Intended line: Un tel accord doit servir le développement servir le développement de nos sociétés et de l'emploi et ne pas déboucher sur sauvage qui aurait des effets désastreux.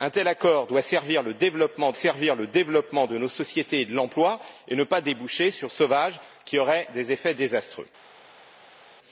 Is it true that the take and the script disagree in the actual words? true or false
false